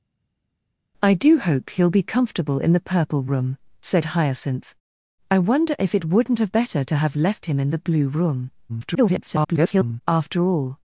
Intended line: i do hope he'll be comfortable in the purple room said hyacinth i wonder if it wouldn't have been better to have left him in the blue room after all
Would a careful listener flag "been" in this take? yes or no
yes